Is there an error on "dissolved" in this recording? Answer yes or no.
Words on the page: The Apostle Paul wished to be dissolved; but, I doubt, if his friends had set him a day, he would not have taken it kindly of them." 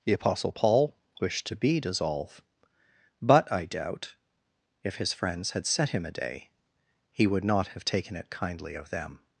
yes